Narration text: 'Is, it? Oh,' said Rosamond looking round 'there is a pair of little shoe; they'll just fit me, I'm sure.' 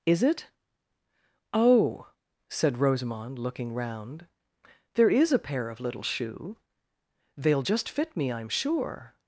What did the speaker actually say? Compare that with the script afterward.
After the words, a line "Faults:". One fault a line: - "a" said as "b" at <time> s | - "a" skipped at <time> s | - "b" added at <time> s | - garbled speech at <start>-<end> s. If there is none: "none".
'Is, it? Oh,' said Rosamond looking round 'there is a pair of little shoe; they'll just fit me, I'm sure.'
Faults:
none